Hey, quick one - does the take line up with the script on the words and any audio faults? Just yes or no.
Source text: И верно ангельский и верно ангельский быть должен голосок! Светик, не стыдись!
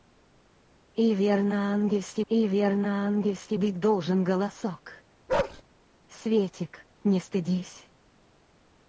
no